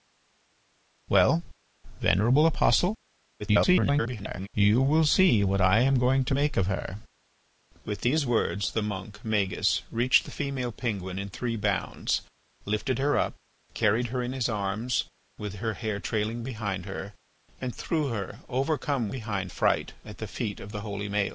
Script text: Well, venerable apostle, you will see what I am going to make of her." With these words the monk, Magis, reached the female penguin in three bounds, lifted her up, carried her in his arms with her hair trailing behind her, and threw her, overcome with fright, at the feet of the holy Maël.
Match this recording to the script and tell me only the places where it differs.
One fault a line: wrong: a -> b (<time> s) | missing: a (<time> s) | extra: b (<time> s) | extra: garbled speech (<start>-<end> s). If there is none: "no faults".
extra: garbled speech (3.4-4.5 s)
wrong: with -> behind (19.1 s)